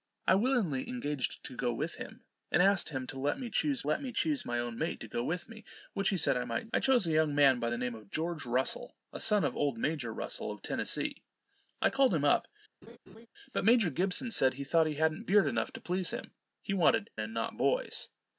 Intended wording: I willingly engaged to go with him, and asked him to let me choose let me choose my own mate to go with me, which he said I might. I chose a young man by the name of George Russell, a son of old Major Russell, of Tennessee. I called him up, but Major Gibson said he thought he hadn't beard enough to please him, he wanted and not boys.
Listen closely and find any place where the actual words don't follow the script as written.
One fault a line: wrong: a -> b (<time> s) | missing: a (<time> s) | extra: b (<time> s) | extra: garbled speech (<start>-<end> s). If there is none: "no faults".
no faults